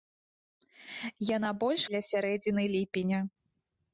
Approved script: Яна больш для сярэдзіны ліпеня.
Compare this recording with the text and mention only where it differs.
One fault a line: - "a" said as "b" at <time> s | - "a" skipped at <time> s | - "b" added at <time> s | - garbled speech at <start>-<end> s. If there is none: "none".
none